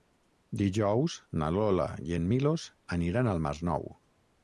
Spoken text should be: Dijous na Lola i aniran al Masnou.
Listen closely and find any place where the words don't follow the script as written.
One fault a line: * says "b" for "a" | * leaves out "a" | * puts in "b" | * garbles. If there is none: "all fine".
* puts in "en Milos"